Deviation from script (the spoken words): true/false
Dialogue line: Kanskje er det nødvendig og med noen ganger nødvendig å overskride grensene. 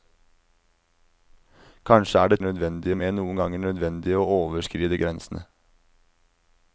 false